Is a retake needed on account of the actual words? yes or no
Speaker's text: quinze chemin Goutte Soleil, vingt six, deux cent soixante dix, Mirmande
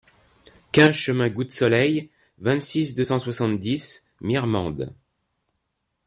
no